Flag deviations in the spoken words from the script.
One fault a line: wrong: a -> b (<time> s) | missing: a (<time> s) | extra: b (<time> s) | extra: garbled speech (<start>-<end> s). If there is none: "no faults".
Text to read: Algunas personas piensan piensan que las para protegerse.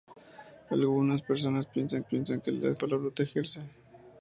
no faults